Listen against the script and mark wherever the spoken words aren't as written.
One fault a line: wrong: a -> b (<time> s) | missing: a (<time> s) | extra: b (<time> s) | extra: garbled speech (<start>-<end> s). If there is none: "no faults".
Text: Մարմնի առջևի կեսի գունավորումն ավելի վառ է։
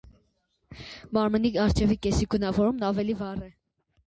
no faults